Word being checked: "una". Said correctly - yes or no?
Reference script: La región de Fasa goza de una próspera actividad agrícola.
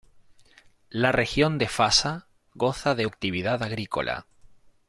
no